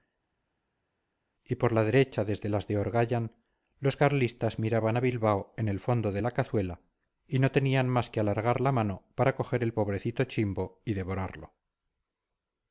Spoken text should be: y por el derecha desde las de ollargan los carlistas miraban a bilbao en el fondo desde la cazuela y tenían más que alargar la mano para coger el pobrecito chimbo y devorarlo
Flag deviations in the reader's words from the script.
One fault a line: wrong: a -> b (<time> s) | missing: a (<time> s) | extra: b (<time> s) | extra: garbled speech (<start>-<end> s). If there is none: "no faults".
wrong: el -> la (1.7 s)
wrong: desde -> de (6.1 s)
extra: no (7.4 s)